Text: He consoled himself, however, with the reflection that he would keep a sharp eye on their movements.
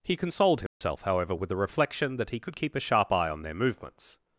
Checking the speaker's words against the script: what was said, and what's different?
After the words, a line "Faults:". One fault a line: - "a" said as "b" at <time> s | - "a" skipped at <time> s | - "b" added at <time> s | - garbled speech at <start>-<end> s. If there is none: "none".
He consoled himself, however, with the reflection that he could keep a sharp eye on their movements.
Faults:
- "would" said as "could" at 2.4 s